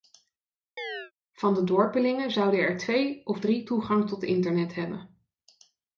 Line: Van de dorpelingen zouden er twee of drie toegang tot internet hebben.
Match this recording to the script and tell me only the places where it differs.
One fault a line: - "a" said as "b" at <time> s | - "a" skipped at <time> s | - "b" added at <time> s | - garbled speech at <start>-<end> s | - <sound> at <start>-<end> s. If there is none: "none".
- chirp at 0.8-1.1 s